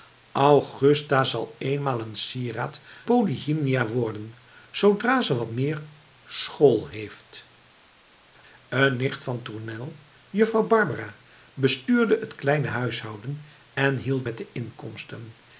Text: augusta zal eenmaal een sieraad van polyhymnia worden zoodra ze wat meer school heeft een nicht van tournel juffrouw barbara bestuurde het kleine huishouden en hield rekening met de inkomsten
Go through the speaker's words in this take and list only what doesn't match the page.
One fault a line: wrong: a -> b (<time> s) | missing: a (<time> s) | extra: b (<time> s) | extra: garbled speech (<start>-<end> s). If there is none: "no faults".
missing: van (2.8 s)
missing: rekening (14.3 s)